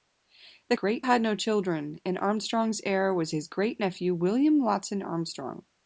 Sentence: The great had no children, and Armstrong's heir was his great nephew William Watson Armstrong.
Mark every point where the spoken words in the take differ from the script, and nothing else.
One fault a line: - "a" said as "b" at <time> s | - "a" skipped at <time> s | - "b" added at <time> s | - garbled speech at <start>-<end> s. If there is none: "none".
none